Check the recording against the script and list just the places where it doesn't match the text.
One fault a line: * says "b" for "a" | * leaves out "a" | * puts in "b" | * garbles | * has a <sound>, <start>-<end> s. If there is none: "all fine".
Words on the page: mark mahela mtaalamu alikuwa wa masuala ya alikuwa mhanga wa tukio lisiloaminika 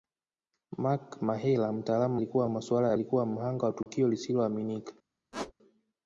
* has a dropout, 3.8-3.9 s
* has a squeak, 5.3-5.5 s